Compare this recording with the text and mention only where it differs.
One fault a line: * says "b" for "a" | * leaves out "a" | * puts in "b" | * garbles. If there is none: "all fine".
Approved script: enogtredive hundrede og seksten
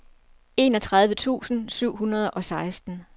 * puts in "tusind syv"